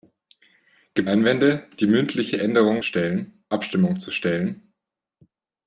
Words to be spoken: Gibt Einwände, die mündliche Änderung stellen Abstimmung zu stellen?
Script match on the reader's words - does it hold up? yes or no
yes